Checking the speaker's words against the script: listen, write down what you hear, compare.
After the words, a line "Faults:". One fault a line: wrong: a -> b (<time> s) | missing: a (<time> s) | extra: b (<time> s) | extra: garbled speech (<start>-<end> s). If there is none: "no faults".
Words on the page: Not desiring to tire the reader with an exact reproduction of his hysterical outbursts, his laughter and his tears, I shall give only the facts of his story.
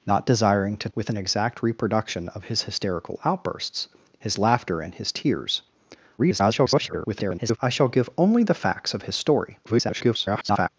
Not desiring to with an exact reproduction of his hysterical outbursts, his laughter and his tears, [garbled] I shall give only the facts of his story. [garbled]
Faults:
missing: tire the reader (0.9 s)
extra: garbled speech (6.2-7.6 s)
extra: garbled speech (9.6-10.7 s)